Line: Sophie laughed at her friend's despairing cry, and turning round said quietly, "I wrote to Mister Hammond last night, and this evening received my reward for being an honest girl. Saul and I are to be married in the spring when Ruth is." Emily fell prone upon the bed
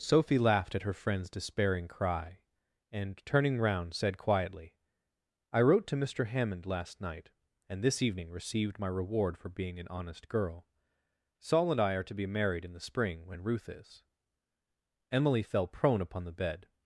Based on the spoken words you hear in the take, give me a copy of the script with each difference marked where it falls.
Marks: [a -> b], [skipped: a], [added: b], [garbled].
Sophie laughed at her friend's despairing cry, and turning round said quietly, "I wrote to Mister Hammond last night, and this evening received my reward for being an honest girl. Saul and I are to be married in the spring when Ruth is." Emily fell prone upon the bed